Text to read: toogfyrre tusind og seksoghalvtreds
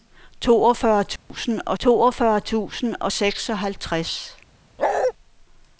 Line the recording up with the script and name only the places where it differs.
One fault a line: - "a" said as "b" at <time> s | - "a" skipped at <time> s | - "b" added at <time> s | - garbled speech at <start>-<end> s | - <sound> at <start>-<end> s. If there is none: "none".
- dropout at 1.2-1.3 s
- "toogfyrre tusind og" added at 1.8 s
- bark at 4.8-5.1 s